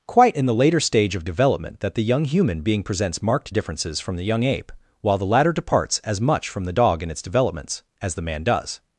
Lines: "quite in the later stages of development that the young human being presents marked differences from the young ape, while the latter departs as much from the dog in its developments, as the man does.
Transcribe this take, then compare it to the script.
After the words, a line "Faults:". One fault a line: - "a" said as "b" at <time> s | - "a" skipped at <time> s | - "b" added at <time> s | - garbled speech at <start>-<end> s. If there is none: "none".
"quite in the later stage of development that the young human being presents marked differences from the young ape, while the latter departs as much from the dog in its developments, as the man does.
Faults:
- "stages" said as "stage" at 0.8 s